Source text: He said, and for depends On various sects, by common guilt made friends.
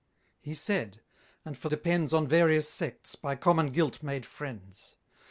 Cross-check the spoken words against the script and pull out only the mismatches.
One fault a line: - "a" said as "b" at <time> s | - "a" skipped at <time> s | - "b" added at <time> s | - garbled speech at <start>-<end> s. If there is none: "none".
none